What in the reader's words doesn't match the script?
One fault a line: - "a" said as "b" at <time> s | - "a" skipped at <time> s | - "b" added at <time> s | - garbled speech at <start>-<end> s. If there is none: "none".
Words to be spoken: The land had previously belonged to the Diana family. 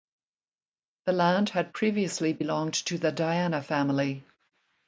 none